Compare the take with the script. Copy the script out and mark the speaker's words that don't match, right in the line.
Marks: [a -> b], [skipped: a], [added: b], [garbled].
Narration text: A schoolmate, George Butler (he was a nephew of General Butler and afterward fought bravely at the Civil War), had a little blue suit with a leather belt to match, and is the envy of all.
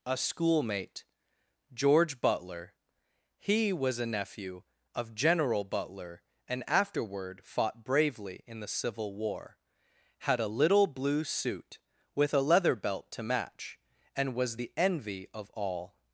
A schoolmate, George Butler (he was a nephew of General Butler and afterward fought bravely [at -> in] the Civil War), had a little blue suit with a leather belt to match, and [is -> was] the envy of all.